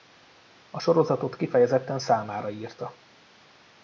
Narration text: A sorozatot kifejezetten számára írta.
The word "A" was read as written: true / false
true